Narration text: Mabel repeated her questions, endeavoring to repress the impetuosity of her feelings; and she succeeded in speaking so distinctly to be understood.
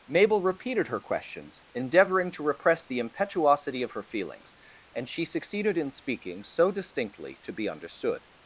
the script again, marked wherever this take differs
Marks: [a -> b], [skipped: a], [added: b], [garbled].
Mabel repeated her questions, endeavoring to repress the impetuosity of her feelings; and she succeeded in speaking so distinctly to be understood.